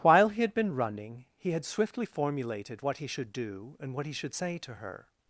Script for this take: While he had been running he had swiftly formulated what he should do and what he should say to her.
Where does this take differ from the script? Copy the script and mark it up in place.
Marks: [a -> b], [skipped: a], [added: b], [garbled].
While he had been running he had swiftly formulated what he should do and what he should say to her.